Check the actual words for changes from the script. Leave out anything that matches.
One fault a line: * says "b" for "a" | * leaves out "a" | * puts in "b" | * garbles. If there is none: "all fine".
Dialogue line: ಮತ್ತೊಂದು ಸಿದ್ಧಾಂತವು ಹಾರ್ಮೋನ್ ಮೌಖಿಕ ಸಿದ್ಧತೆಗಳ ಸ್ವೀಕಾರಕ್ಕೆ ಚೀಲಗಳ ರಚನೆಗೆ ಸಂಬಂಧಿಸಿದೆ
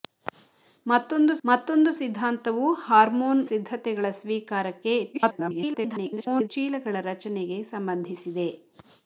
* puts in "ಮತ್ತೊಂದು"
* leaves out "ಮೌಖಿಕ"
* garbles